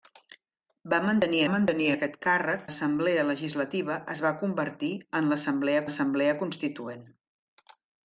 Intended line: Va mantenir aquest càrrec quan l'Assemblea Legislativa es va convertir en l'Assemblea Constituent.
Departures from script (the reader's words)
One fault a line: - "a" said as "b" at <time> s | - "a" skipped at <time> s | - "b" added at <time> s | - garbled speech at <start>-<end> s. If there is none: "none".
- "mantenir" added at 1.5 s
- "quan" skipped at 2.6 s
- "l'Assemblea" added at 5.8 s